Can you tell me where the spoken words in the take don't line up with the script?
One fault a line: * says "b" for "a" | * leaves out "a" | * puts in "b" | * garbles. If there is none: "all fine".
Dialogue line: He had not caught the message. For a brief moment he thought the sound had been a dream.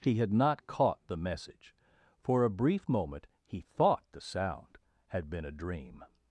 all fine